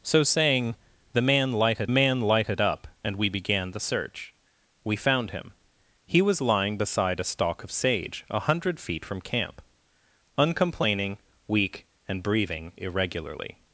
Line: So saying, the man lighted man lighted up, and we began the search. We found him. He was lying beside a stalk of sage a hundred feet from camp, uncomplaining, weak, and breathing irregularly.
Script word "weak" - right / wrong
right